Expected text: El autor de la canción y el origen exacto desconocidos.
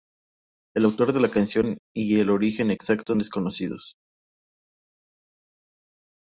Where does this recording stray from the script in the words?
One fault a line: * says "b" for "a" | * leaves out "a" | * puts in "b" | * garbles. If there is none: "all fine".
all fine